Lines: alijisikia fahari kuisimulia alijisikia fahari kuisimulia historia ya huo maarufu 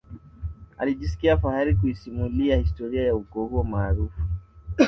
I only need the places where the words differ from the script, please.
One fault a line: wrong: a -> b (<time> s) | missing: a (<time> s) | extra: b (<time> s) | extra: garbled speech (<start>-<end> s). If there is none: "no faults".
missing: alijisikia fahari kuisimulia (2.6 s)
extra: ukoo (3.1 s)